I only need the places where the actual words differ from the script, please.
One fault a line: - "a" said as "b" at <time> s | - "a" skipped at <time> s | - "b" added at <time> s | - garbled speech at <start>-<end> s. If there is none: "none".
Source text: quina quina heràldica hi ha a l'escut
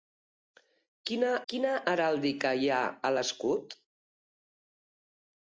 none